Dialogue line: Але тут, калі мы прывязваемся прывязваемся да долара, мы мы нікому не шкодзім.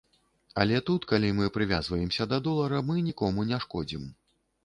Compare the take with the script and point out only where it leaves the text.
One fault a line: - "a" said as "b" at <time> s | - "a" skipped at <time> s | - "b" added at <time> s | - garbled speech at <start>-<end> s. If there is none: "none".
- "прывязваемся" skipped at 2.3 s
- "мы" skipped at 3.0 s